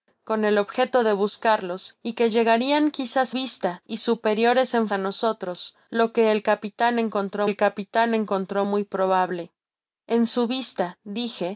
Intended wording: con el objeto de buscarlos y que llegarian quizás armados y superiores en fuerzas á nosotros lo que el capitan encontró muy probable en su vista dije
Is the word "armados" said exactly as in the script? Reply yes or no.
no